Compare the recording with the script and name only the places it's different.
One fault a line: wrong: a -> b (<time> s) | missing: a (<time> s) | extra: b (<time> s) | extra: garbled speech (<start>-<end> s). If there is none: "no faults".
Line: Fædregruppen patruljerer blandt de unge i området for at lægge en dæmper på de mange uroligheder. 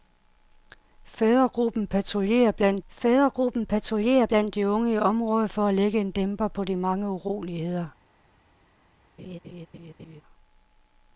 extra: fædregruppen patruljerer blandt (2.9 s)